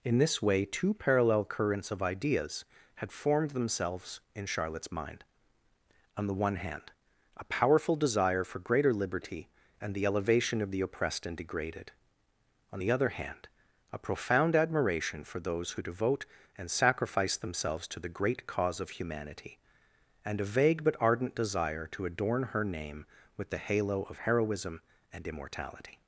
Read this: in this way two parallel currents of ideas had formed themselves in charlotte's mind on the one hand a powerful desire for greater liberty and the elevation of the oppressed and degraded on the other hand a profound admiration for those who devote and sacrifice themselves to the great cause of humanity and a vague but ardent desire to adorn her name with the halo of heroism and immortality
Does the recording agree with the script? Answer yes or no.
yes